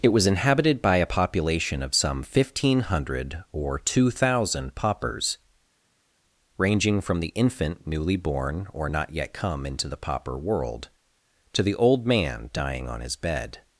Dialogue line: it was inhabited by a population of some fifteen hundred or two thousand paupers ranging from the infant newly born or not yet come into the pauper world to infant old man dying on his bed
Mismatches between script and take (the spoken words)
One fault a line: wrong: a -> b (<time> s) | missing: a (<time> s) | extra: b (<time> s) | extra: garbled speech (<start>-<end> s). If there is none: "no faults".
wrong: infant -> the (11.6 s)